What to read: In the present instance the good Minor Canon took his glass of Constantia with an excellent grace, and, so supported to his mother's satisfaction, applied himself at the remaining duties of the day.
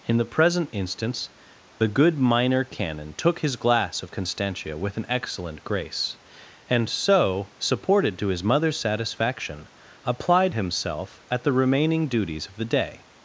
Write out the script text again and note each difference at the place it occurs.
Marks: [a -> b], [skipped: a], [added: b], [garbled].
In the present instance the good Minor Canon took his glass of Constantia with an excellent grace, and, so supported to his mother's satisfaction, applied himself at the remaining duties of the day.